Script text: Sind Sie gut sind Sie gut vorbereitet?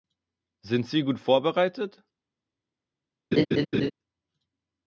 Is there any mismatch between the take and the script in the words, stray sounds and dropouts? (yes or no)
yes